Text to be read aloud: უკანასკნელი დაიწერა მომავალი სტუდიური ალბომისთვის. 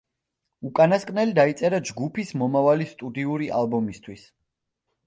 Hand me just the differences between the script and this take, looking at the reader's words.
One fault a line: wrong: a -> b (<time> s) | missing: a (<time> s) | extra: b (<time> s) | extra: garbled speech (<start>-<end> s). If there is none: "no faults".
extra: ჯგუფის (1.9 s)